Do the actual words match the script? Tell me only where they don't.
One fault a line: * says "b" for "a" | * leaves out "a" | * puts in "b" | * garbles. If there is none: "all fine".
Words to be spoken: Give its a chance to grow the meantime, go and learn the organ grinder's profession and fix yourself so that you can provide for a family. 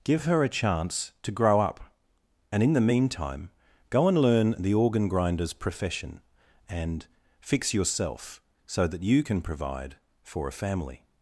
* says "her" for "its"
* puts in "up and in"